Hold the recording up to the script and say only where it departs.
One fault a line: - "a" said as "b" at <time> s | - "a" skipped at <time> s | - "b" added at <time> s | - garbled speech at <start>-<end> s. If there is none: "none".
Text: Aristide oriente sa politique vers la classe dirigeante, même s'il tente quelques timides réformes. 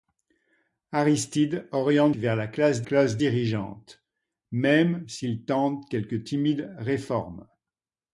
- "sa politique" skipped at 2.1 s
- "classe" added at 2.8 s